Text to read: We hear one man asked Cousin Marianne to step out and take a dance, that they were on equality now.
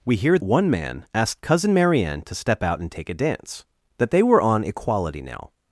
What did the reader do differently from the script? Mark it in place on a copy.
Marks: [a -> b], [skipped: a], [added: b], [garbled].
We hear one man asked Cousin Marianne to step out and take a dance, that they were on equality now.